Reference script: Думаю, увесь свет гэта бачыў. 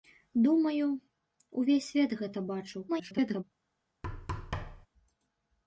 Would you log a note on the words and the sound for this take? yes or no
yes